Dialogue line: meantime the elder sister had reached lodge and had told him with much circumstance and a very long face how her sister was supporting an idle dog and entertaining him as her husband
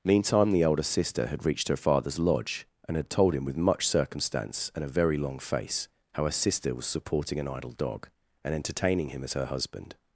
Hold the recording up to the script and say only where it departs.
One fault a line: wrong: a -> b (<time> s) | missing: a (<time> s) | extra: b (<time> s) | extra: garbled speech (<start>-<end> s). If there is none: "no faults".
extra: her father's (1.7 s)